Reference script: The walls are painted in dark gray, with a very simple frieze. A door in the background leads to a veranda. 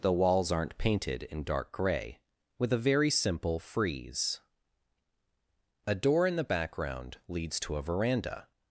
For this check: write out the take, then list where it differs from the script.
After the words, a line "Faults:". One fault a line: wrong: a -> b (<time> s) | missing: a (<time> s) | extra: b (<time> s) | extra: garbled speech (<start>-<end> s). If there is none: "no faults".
The walls aren't painted in dark gray, with a very simple frieze. A door in the background leads to a veranda.
Faults:
wrong: are -> aren't (0.5 s)